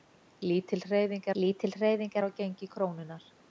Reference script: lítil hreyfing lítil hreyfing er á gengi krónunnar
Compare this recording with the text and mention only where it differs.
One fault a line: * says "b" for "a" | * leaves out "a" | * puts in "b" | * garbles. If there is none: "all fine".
all fine